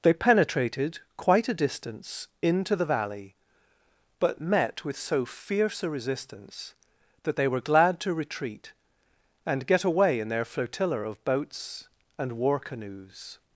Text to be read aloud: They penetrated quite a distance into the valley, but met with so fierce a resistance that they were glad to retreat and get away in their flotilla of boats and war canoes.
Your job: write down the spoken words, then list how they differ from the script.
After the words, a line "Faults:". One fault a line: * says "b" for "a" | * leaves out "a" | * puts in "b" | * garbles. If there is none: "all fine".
They penetrated quite a distance into the valley, but met with so fierce a resistance that they were glad to retreat and get away in their flotilla of boats and war canoes.
Faults:
all fine